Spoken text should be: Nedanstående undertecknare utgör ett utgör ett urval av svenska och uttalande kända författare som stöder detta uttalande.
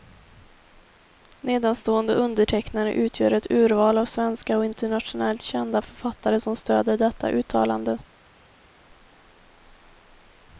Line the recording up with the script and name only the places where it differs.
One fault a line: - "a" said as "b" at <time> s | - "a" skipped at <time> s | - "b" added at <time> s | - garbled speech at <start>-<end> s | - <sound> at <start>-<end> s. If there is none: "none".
- "utgör ett" skipped at 3.5 s
- "uttalande" said as "internationellt" at 4.7 s